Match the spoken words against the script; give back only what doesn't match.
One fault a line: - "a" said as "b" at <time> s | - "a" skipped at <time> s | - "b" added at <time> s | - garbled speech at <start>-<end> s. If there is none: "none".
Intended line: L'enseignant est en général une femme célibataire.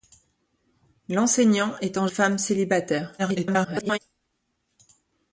- "général une" skipped at 2.1 s
- garbled speech at 3.2-4.0 s